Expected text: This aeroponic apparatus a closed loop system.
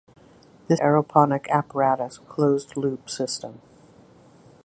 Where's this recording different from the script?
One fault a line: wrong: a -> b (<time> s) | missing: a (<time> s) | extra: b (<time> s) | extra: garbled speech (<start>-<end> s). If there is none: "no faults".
no faults